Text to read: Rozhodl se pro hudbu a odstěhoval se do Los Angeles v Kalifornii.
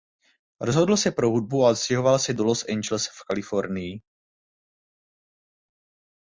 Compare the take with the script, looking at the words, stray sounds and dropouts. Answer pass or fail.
pass